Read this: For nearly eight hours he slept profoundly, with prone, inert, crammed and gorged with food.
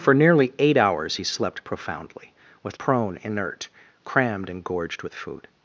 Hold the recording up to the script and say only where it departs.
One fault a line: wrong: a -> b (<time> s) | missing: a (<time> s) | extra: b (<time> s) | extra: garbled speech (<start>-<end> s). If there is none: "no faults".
no faults